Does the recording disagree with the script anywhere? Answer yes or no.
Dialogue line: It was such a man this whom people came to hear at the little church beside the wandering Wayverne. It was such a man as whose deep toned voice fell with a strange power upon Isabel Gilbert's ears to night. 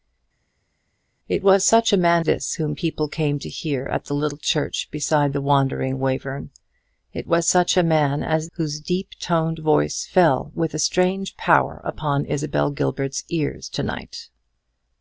no